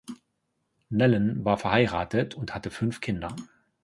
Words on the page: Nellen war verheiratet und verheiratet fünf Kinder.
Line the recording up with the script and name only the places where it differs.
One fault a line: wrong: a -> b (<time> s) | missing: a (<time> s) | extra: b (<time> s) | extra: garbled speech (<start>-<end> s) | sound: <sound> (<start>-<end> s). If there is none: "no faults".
wrong: verheiratet -> hatte (2.5 s)